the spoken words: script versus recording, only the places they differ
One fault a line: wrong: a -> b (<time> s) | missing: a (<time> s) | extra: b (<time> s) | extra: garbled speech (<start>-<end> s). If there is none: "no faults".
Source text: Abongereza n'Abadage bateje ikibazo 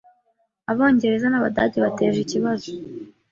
no faults